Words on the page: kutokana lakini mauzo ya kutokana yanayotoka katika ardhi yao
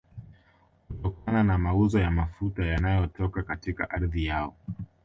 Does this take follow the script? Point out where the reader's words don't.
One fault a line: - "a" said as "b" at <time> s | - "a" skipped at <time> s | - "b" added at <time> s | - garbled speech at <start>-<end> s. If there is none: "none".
- "lakini" said as "na" at 1.4 s
- "kutokana" said as "mafuta" at 2.1 s